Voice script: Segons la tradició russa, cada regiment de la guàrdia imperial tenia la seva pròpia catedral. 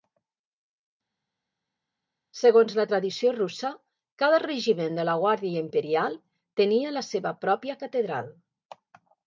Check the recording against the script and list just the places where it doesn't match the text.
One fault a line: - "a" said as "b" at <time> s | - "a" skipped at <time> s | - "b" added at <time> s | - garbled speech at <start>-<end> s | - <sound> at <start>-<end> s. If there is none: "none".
none